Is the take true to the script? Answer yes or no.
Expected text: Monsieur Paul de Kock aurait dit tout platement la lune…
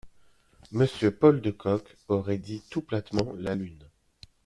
yes